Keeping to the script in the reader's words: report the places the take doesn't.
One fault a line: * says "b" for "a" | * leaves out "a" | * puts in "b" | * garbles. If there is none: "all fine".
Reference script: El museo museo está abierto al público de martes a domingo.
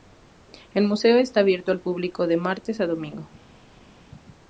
* leaves out "museo"